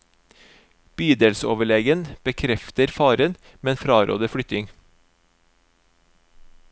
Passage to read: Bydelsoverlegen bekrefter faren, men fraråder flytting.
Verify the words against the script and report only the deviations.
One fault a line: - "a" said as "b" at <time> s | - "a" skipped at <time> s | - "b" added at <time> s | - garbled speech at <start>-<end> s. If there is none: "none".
none